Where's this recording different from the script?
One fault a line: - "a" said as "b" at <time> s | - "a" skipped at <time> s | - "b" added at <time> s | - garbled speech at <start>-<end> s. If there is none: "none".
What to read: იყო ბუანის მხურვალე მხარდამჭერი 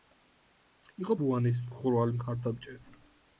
none